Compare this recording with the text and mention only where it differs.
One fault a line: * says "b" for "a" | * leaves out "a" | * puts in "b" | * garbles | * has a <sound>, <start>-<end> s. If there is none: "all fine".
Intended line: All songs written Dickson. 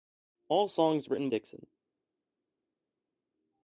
all fine